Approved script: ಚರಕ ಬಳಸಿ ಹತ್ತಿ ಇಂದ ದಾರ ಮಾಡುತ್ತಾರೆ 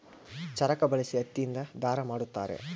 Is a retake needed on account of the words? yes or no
no